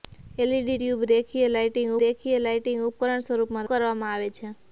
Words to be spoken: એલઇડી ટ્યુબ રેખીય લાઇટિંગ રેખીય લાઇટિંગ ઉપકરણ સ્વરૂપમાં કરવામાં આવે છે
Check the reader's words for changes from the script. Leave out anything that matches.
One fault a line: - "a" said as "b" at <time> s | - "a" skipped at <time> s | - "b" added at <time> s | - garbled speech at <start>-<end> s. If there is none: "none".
none